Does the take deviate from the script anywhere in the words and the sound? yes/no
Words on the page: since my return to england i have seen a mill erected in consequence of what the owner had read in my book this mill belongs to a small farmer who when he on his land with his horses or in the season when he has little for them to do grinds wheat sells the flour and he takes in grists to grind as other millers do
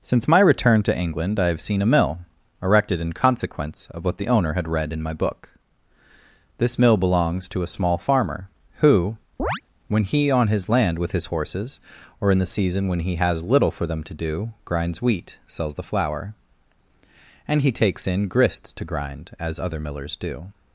yes